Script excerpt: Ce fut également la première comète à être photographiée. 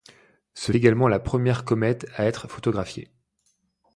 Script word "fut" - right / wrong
wrong